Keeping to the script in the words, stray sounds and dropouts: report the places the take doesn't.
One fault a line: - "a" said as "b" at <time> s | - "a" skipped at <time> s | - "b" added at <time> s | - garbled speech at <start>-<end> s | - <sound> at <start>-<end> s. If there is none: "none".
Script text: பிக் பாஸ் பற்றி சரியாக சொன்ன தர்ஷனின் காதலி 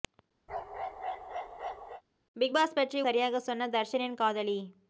- bark at 0.5-2.0 s